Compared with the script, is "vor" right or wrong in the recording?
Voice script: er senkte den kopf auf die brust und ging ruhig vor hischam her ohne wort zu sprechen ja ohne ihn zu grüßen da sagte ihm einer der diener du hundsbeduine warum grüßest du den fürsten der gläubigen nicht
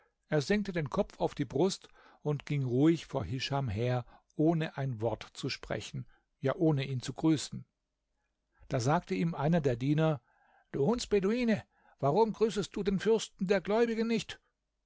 right